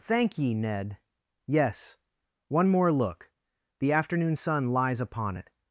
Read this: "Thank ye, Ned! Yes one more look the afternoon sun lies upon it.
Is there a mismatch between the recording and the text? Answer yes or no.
no